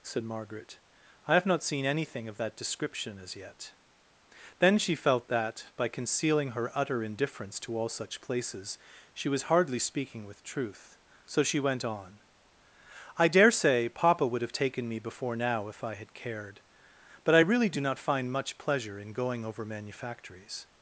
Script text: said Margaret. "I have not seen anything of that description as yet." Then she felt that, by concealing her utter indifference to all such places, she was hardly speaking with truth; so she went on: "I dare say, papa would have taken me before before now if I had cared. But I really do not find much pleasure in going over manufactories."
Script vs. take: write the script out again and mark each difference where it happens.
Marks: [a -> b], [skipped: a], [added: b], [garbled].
said Margaret. "I have not seen anything of that description as yet." Then she felt that, by concealing her utter indifference to all such places, she was hardly speaking with truth; so she went on: "I dare say, papa would have taken me before [skipped: before] now if I had cared. But I really do not find much pleasure in going over manufactories."